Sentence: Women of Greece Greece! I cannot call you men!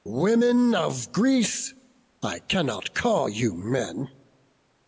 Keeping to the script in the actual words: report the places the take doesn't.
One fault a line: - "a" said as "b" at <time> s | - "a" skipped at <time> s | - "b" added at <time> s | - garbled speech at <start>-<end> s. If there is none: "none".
- "Greece" skipped at 1.8 s